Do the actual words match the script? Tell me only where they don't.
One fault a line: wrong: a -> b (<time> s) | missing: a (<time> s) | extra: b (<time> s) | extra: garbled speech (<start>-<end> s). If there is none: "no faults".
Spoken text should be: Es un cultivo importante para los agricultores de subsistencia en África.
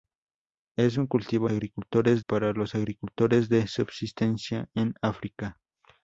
wrong: importante -> agricultores (1.5 s)